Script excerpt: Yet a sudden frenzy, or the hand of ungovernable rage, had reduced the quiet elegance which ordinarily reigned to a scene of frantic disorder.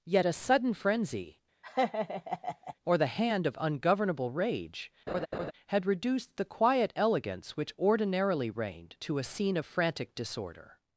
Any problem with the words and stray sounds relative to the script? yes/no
yes